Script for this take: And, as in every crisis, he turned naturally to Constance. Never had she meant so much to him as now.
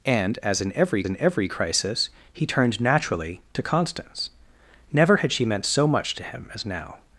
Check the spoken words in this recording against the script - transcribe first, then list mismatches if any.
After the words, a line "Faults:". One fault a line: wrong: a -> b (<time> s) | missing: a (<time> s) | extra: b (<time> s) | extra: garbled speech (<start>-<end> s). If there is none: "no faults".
And, as in every in every crisis, he turned naturally to Constance. Never had she meant so much to him as now.
Faults:
extra: in every (1.0 s)